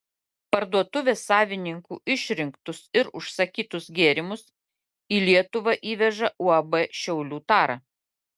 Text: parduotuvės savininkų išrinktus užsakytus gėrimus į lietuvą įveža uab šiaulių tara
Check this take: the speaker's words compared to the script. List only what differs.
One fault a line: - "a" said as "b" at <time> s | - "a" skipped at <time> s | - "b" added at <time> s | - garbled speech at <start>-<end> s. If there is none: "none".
- "ir" added at 3.0 s